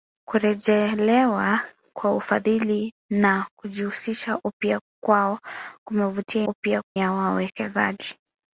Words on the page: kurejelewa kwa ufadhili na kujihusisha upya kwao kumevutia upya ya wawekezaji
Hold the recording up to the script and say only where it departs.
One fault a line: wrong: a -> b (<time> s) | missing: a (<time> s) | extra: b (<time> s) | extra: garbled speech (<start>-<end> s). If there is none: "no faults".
no faults